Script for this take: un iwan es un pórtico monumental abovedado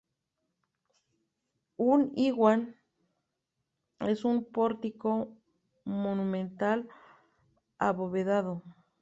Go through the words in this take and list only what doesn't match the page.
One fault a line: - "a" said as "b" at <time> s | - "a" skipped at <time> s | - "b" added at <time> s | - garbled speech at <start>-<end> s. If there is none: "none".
none